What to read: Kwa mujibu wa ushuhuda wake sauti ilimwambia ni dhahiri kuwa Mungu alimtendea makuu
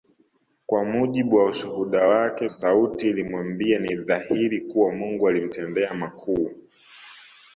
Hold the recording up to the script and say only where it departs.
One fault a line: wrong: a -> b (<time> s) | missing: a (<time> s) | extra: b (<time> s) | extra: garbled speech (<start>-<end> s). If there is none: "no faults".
no faults